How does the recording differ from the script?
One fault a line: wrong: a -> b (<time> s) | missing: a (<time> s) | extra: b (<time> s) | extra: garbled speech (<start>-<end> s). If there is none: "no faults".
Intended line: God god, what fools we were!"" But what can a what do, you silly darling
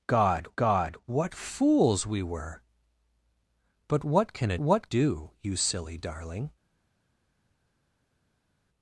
no faults